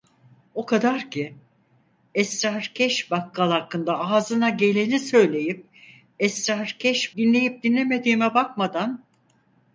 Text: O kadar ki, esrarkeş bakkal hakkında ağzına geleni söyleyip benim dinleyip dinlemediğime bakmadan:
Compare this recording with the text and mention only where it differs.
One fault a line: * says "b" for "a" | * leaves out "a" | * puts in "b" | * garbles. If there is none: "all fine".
* says "esrarkeş" for "benim"